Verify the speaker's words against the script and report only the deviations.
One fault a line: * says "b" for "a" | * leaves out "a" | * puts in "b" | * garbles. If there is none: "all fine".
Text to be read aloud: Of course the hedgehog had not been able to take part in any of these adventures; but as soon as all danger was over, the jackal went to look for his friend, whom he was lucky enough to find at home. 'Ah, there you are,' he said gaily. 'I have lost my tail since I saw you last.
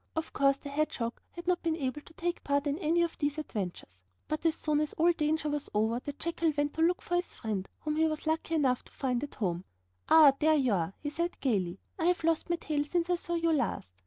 all fine